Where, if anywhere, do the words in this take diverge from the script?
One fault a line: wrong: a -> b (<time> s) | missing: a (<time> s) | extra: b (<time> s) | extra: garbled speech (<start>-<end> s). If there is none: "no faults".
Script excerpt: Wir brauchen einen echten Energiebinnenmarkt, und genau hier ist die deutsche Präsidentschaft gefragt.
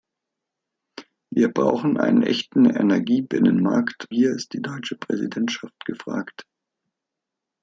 missing: und genau (4.1 s)